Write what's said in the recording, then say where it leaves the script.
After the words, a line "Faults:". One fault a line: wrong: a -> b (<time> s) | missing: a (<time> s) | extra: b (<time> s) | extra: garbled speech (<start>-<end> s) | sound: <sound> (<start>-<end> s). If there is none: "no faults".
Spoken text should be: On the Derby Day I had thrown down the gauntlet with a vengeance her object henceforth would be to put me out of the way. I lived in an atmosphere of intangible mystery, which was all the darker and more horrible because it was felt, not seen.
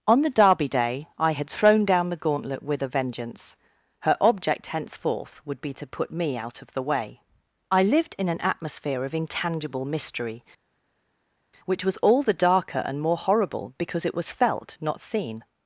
On the Derby Day I had thrown down the gauntlet with a vengeance her object henceforth would be to put me out of the way. I lived in an atmosphere of intangible mystery, which was all the darker and more horrible because it was felt, not seen.
Faults:
no faults